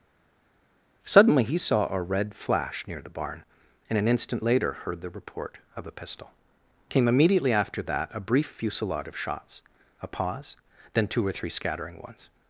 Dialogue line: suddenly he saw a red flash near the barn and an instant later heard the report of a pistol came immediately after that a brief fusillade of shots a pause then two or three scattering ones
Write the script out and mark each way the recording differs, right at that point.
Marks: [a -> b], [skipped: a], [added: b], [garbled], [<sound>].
suddenly he saw a red flash near the barn and an instant later heard the report of a pistol came immediately after that a brief fusillade of shots a pause then two or three scattering ones